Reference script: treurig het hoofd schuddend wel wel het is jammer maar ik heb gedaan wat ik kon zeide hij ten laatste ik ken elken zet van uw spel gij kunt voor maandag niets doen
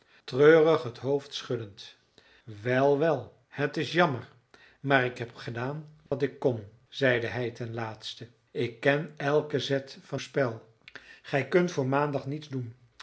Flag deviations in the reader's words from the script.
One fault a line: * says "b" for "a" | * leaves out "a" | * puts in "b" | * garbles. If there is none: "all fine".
* leaves out "uw"